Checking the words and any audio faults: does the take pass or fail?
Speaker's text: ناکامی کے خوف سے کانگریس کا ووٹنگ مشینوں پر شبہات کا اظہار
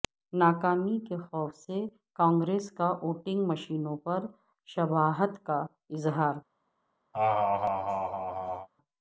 fail